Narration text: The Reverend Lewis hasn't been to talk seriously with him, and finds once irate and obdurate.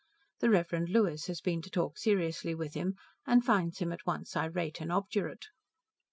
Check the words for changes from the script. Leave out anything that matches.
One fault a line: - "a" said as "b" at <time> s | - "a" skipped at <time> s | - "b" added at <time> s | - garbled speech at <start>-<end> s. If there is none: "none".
- "hasn't" said as "has" at 1.3 s
- "him at" added at 3.8 s